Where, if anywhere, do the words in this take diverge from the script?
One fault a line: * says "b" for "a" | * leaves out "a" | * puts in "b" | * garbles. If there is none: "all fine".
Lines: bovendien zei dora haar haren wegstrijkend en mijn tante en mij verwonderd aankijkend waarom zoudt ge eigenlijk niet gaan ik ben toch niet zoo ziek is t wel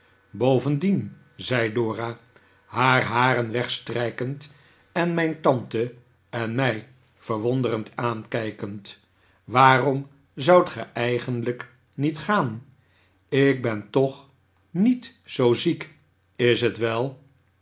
all fine